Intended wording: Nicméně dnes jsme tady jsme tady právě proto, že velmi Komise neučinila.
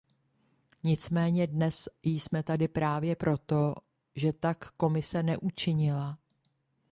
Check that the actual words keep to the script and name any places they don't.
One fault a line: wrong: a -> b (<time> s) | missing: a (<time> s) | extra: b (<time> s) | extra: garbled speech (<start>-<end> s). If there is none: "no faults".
missing: jsme tady (2.7 s)
wrong: velmi -> tak (4.3 s)